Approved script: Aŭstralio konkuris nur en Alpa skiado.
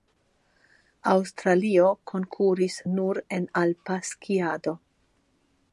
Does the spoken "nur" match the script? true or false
true